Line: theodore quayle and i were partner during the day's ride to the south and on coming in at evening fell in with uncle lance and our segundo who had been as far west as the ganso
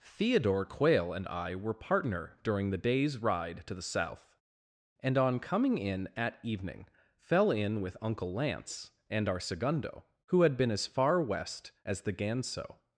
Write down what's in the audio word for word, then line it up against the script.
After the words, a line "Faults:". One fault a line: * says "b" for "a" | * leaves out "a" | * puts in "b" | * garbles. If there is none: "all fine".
theodore quayle and i were partner during the day's ride to the south and on coming in at evening fell in with uncle lance and our segundo who had been as far west as the ganso
Faults:
all fine